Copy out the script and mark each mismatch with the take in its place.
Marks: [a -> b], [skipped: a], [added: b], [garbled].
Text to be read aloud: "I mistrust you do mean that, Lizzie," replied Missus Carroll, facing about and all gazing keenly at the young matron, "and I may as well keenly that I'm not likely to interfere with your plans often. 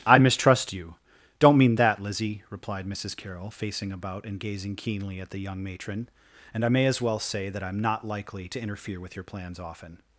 "I mistrust you [do -> don't] mean that, Lizzie," replied Missus Carroll, facing about and [skipped: all] gazing keenly at the young matron, "and I may as well [keenly -> say] that I'm not likely to interfere with your plans often.